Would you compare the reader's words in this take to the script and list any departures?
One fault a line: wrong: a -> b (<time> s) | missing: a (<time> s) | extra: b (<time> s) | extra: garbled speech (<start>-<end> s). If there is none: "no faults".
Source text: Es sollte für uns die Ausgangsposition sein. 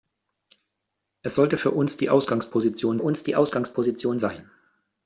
extra: uns die Ausgangsposition (3.0 s)